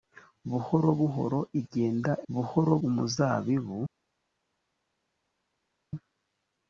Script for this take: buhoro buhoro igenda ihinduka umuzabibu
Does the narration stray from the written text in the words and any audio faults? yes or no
yes